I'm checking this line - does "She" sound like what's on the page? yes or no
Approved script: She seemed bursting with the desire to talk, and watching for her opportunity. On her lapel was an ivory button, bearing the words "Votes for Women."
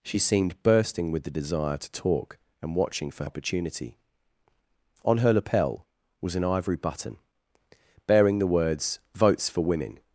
yes